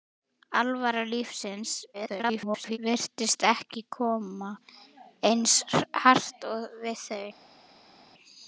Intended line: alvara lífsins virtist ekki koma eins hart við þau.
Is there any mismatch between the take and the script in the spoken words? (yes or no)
yes